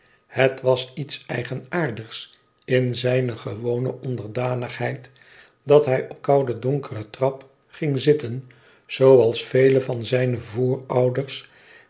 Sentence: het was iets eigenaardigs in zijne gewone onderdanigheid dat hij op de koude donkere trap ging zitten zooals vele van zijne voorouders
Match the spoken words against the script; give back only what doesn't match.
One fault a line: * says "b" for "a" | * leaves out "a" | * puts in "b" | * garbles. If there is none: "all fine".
* leaves out "de"